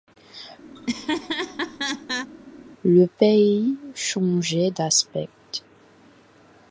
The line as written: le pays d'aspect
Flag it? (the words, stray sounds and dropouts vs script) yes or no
yes